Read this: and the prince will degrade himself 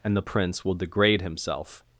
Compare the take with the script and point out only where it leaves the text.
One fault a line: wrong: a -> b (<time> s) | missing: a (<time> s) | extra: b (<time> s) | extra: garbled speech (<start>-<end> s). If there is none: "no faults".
no faults